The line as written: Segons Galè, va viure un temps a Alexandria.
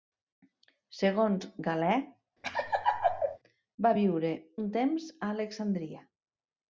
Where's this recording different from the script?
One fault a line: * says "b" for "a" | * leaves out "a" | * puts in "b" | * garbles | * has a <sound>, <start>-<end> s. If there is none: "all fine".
* has a laugh, 2.4-3.4 s